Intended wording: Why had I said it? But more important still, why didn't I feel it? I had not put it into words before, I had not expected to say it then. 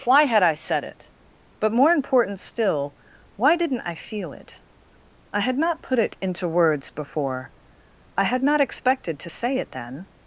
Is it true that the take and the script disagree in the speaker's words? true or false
false